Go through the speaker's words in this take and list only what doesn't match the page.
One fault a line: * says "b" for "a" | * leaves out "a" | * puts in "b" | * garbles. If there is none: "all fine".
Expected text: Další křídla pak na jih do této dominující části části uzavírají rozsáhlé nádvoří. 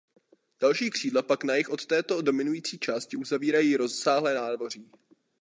* says "od" for "do"
* leaves out "části"